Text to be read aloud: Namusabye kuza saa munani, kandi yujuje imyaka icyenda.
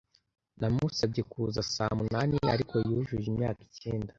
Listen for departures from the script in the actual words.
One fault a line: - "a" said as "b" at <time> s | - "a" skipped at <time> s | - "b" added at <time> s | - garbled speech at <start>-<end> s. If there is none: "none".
- "kandi" said as "ariko" at 2.5 s